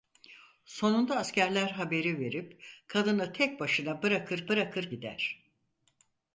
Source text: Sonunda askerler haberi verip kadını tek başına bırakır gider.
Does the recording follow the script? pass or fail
fail